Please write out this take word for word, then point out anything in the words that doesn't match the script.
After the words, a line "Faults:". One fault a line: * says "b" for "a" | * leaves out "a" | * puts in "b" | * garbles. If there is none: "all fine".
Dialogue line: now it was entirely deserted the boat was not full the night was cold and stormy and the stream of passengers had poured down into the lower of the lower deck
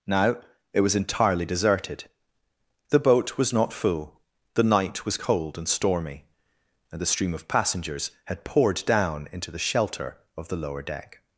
now it was entirely deserted the boat was not full the night was cold and stormy and the stream of passengers had poured down into the shelter of the lower deck
Faults:
* says "shelter" for "lower"